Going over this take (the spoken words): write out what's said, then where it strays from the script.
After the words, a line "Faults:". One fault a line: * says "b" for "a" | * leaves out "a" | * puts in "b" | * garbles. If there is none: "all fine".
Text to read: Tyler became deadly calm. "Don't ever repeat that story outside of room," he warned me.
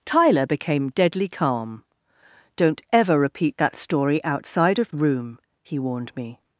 Tyler became deadly calm. "Don't ever repeat that story outside of room," he warned me.
Faults:
all fine